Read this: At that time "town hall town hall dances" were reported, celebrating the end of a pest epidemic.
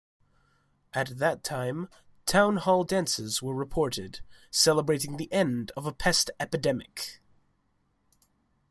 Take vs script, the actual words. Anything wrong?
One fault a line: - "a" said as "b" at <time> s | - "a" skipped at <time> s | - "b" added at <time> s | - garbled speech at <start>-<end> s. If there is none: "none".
- "town hall" skipped at 2.8 s